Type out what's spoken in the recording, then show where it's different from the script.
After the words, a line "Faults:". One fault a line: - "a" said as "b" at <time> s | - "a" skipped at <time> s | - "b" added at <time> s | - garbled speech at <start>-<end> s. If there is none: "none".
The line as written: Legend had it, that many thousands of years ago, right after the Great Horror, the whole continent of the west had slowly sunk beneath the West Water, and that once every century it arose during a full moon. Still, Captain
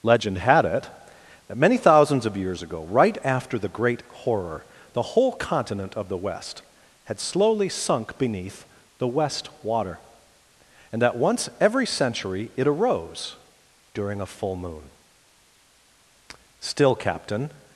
Legend had it, that many thousands of years ago, right after the Great Horror, the whole continent of the west had slowly sunk beneath the West Water, and that once every century it arose during a full moon. Still, Captain
Faults:
none